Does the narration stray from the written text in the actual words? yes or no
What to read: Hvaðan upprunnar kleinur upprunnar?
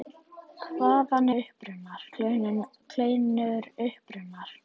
no